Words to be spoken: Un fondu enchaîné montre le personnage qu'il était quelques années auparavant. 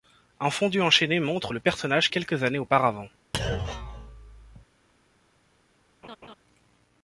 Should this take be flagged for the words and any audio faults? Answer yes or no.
yes